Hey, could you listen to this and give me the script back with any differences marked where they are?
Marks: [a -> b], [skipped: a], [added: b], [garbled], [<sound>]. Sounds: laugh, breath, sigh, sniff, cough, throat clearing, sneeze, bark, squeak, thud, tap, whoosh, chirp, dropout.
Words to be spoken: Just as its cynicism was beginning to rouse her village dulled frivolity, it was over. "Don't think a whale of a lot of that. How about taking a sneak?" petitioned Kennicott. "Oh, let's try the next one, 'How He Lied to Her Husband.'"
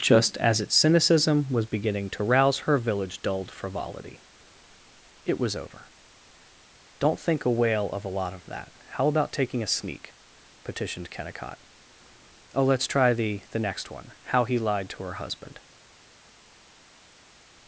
Just as its cynicism was beginning to rouse her village dulled frivolity, it was over. "Don't think a whale of a lot of that. How about taking a sneak?" petitioned Kennicott. "Oh, let's try the [added: the] next one, 'How He Lied to Her Husband.'"